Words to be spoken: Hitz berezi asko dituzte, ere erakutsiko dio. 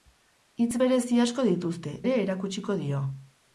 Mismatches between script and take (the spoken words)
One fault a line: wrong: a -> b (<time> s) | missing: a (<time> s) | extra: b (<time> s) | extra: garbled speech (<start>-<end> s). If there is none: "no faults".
no faults